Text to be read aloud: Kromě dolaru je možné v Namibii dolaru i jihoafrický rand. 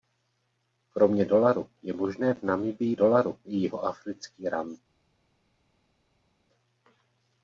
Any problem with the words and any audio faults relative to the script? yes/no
no